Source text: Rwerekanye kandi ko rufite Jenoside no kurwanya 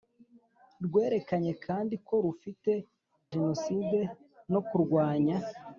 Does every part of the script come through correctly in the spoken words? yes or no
yes